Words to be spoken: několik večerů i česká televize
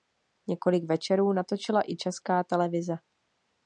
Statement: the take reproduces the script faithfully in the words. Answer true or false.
false